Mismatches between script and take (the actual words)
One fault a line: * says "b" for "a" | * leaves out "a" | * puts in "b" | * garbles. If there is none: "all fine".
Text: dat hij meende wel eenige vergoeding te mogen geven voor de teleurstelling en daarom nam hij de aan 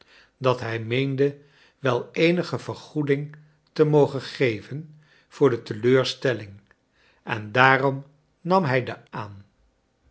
all fine